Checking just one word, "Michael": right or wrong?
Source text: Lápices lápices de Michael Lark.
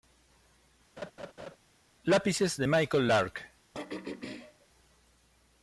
right